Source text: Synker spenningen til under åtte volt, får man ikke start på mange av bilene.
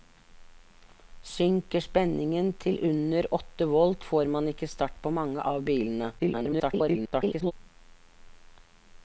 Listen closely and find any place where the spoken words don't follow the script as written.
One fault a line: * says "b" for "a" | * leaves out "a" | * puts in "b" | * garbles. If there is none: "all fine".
* garbles